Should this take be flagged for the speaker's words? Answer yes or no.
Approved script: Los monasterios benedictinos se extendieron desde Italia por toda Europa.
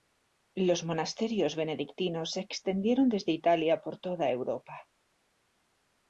no